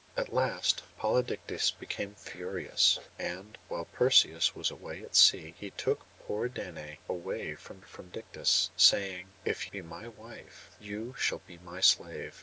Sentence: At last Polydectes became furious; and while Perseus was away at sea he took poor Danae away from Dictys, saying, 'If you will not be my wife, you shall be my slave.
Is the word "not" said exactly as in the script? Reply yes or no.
no